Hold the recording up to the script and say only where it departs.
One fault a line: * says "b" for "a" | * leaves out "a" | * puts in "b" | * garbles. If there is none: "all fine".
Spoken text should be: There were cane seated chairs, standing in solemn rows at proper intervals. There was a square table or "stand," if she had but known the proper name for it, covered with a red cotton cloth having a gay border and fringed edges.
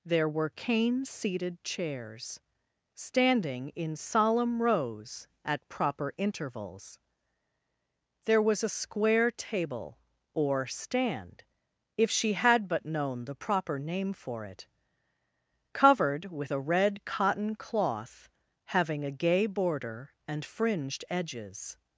all fine